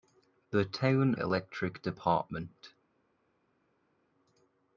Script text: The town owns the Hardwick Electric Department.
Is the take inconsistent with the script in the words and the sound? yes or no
yes